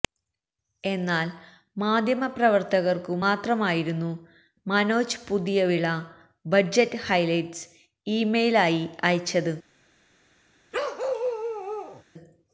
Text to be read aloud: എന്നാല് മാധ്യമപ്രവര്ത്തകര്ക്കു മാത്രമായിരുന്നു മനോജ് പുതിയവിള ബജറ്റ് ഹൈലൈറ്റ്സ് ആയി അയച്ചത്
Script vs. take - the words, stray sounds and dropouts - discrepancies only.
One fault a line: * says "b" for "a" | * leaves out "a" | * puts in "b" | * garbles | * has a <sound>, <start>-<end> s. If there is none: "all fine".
* puts in "ഇമെയില്"
* has a bark, 10.7-12.0 s